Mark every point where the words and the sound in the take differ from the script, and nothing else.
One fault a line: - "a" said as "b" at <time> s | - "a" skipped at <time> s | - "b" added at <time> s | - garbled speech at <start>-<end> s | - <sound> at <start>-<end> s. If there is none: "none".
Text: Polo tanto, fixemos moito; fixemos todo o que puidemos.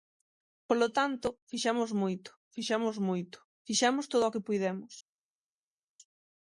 - "moito fixemos" added at 3.1 s